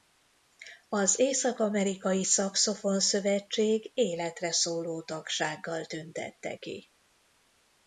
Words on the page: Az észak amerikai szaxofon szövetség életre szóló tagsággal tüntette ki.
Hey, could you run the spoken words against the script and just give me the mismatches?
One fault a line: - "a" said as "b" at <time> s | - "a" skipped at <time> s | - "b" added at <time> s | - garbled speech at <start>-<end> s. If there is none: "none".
none